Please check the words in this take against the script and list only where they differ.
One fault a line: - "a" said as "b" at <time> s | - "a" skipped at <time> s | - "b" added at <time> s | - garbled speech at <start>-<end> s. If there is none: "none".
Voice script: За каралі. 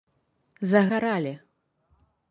none